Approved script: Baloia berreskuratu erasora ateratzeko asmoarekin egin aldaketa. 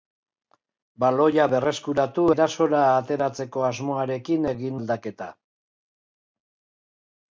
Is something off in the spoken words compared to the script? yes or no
no